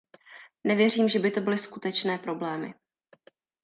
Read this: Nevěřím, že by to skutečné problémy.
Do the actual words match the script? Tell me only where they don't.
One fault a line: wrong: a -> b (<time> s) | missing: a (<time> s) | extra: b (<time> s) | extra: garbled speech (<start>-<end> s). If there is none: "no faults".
extra: byly (1.4 s)